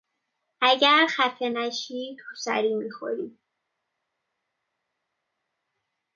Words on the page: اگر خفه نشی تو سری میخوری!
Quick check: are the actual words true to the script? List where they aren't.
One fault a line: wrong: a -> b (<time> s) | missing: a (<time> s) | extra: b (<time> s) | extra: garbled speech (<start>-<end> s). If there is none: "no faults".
no faults